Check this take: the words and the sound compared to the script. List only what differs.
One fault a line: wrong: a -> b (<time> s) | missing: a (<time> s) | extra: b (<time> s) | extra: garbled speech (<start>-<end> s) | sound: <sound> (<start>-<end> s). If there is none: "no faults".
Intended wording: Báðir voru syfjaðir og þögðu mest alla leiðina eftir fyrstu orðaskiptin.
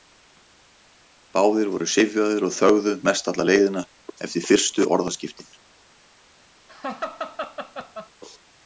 sound: laugh (6.7-8.1 s)